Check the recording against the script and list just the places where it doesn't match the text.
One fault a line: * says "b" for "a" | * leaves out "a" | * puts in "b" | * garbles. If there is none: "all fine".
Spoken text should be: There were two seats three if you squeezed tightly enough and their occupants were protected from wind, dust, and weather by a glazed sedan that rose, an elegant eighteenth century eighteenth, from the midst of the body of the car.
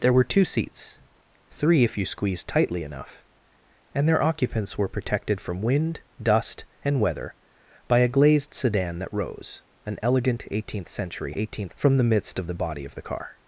all fine